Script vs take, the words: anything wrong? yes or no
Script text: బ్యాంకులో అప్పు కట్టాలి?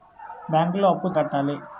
no